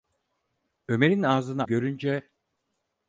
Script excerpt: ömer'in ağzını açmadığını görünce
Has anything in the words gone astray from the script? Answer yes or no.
yes